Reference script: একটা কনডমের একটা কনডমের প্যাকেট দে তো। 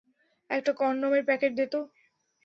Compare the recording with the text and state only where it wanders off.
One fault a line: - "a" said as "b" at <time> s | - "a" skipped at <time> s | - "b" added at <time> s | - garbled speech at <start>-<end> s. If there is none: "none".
- "একটা কনডমের" skipped at 1.2 s